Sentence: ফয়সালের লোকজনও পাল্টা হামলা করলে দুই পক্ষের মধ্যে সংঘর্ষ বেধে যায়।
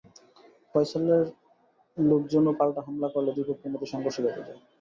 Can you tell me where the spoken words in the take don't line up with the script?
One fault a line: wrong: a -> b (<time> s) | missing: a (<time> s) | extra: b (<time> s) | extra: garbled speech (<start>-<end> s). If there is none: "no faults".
no faults